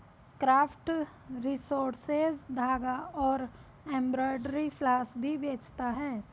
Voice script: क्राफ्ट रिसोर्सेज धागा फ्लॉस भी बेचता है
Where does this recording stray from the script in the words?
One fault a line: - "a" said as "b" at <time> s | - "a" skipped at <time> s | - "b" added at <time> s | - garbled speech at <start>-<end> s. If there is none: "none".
- "और एम्ब्रॉयडरी" added at 3.2 s